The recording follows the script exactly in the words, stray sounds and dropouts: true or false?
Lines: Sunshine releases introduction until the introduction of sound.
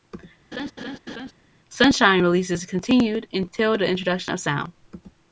false